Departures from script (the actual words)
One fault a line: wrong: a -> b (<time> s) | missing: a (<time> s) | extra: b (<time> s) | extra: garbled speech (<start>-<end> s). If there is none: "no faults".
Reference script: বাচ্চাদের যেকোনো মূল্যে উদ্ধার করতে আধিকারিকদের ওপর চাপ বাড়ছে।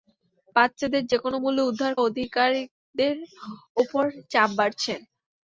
missing: করতে (1.9 s)